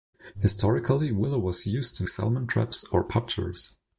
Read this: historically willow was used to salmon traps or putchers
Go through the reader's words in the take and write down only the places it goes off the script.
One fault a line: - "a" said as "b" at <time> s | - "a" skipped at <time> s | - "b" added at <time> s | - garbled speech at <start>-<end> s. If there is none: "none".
none